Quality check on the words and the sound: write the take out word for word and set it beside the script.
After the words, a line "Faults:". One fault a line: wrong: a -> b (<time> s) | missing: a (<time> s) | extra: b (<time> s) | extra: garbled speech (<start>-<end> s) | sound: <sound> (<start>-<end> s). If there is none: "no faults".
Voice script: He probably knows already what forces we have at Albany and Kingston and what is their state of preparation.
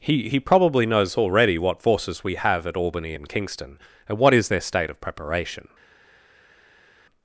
He he probably knows already what forces we have at Albany and Kingston and what is their state of preparation.
Faults:
extra: he (0.3 s)